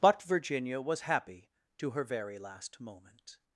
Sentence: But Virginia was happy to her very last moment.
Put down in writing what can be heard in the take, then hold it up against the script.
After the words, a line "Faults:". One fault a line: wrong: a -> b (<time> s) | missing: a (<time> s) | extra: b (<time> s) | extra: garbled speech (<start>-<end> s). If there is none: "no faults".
But Virginia was happy to her very last moment.
Faults:
no faults